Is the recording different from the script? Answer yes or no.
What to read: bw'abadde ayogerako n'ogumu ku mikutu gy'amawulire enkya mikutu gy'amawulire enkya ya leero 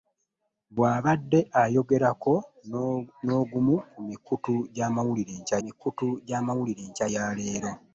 no